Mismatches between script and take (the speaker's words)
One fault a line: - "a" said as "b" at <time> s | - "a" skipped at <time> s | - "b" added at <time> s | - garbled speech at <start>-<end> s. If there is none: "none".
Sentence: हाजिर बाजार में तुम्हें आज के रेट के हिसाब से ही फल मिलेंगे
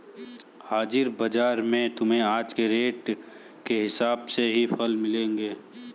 none